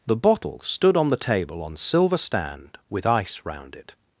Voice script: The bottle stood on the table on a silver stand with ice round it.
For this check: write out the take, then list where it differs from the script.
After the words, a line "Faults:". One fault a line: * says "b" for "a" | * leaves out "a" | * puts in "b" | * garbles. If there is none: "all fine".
The bottle stood on the table on silver stand with ice round it.
Faults:
* leaves out "a"